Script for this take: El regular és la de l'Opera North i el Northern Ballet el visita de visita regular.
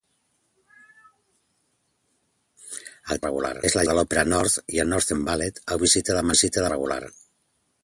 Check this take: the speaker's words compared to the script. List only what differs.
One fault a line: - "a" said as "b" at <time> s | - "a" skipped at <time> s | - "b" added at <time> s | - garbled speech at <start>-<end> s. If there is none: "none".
none